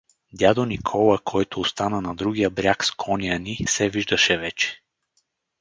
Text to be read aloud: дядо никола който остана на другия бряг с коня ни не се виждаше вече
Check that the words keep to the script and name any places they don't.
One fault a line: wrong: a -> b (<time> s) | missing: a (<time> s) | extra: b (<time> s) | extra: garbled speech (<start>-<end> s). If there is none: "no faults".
missing: не (3.6 s)